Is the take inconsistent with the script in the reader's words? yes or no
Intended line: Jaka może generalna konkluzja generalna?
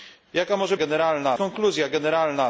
no